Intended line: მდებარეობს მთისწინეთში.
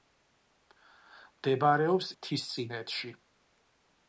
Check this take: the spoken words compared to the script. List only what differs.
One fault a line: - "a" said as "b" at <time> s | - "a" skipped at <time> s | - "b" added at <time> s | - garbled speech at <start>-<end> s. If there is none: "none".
none